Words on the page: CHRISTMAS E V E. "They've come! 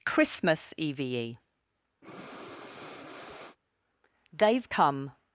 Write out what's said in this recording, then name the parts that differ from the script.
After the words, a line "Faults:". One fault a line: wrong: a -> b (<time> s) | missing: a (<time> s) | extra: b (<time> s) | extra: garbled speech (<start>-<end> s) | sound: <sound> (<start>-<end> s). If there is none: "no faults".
CHRISTMAS E V E. "They've come!
Faults:
sound: breath (2.0-3.6 s)